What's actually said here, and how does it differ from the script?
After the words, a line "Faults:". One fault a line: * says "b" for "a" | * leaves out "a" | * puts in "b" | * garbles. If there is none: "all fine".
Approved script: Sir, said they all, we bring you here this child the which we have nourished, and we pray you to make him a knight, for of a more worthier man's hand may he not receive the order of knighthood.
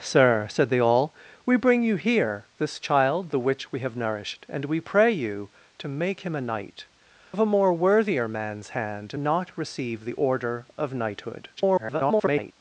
Sir, said they all, we bring you here this child the which we have nourished, and we pray you to make him a knight, of a more worthier man's hand not receive the order of knighthood. [garbled]
Faults:
* leaves out "for"
* leaves out "may he"
* garbles